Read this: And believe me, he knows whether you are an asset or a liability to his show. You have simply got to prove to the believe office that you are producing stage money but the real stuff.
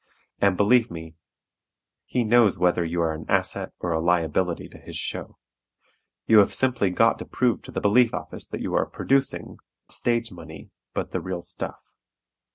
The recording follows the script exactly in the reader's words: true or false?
true